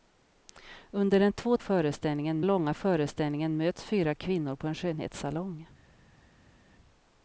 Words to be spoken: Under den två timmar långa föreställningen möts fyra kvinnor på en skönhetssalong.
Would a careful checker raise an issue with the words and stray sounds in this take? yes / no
yes